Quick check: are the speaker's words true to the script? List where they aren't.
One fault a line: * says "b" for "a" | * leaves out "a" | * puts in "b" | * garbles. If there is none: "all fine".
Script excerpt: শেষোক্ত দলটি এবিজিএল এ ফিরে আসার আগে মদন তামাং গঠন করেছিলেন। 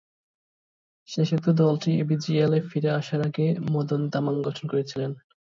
all fine